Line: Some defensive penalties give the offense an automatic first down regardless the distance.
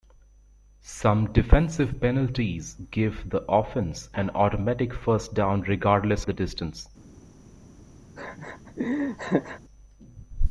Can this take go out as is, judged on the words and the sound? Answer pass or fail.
fail